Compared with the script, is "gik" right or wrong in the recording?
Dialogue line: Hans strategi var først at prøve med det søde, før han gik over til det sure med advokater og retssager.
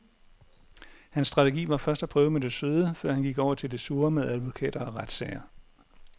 right